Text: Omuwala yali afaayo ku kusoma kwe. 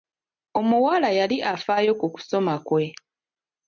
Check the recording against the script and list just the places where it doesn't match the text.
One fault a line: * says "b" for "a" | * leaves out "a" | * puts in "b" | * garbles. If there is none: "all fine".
all fine